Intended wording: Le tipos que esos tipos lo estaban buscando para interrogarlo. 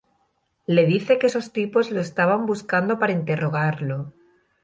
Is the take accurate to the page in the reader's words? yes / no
no